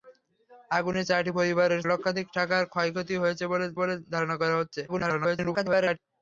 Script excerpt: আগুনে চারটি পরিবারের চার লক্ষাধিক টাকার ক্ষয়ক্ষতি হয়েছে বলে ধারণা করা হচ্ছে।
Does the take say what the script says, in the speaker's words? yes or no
no